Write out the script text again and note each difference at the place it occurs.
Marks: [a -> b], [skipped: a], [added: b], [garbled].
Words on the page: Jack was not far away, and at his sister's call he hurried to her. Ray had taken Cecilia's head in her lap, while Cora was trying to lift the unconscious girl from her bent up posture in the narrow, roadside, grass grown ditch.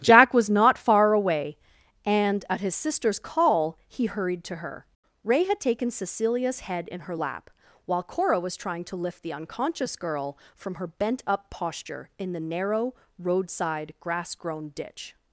Jack was not far away, and at his sister's call he hurried to her. Ray had taken Cecilia's head in her lap, while Cora was trying to lift the unconscious girl from her bent up posture in the narrow, roadside, grass grown ditch.